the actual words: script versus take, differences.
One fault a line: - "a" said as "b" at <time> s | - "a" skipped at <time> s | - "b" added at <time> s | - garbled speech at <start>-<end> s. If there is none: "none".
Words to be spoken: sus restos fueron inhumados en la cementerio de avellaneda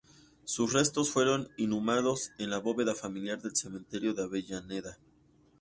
- "bóveda familiar del" added at 2.6 s